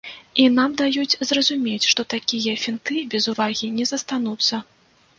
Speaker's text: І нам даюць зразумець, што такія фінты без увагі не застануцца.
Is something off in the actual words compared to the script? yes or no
no